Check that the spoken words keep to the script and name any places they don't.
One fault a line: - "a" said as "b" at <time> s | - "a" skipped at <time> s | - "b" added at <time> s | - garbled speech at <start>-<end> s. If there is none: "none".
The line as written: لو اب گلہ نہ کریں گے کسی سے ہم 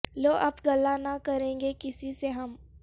none